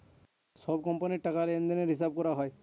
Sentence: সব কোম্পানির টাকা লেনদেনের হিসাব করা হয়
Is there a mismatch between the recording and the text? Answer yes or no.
no